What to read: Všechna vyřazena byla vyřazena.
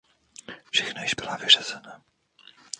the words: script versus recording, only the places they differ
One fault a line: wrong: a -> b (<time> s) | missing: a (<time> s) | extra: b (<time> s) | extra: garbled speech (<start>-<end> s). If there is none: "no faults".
wrong: vyřazena -> již (1.0 s)